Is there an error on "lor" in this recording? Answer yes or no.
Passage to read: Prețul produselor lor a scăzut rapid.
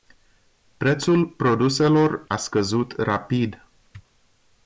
yes